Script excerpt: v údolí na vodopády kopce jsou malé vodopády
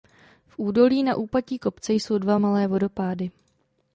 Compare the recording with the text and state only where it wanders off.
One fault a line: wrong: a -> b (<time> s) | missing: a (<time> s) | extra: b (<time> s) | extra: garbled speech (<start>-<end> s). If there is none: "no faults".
wrong: vodopády -> úpatí (1.1 s)
extra: dva (2.2 s)